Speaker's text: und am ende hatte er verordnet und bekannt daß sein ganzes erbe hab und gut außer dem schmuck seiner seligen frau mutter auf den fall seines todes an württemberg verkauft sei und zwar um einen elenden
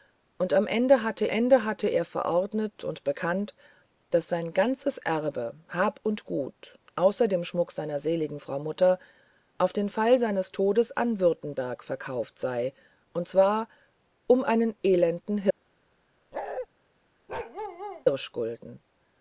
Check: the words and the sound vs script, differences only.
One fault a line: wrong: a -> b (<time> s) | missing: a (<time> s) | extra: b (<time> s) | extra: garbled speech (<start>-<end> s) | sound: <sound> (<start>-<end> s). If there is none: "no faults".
extra: ende hatte (1.3 s)
sound: bark (16.3-16.7 s)
sound: bark (17.3-18.1 s)